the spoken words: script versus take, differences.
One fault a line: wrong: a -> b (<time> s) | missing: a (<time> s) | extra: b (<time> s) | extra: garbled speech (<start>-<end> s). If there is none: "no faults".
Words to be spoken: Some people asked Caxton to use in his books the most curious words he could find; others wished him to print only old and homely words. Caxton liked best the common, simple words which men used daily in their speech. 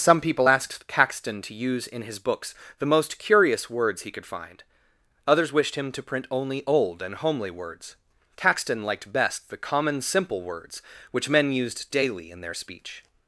no faults